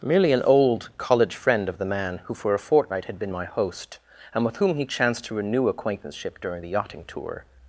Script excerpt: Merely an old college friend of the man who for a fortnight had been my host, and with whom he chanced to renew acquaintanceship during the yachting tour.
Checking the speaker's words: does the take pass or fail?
pass